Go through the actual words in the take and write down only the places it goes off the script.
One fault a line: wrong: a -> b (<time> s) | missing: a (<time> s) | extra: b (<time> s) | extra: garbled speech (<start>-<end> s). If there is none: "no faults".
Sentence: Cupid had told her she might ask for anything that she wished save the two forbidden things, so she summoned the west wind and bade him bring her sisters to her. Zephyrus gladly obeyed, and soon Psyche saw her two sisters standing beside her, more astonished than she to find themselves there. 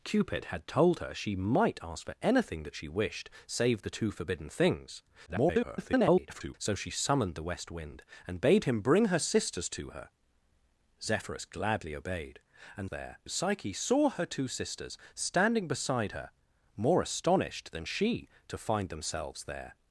extra: garbled speech (5.3-6.5 s)
wrong: soon -> there (12.9 s)